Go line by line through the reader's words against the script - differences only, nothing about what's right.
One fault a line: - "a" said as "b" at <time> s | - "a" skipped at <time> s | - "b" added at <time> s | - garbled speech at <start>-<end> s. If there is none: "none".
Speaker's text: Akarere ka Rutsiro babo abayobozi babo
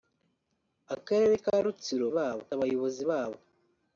none